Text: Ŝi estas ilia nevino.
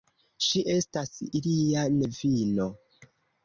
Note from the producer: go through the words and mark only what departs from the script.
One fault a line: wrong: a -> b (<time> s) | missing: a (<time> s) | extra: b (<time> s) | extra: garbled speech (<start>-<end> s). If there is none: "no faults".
no faults